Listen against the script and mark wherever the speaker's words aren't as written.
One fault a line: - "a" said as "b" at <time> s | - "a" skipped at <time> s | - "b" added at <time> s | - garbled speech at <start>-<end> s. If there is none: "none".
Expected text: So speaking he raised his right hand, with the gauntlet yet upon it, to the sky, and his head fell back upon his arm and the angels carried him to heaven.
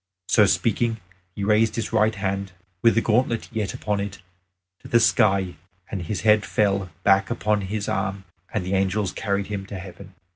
none